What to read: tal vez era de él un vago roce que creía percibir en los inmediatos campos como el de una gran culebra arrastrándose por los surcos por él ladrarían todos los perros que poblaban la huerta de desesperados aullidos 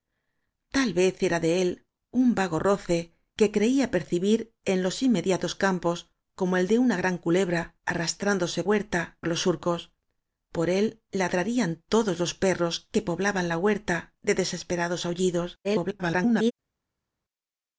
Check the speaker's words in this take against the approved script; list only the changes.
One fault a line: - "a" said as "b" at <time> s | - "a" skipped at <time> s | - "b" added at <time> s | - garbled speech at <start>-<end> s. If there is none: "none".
- "por" said as "huerta" at 8.6 s
- garbled speech at 15.6-16.5 s